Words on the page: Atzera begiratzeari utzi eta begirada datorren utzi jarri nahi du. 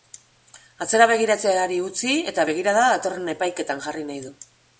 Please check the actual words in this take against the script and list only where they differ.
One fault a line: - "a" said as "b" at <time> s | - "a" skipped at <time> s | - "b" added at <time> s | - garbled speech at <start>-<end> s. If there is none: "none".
- "utzi" said as "epaiketan" at 3.4 s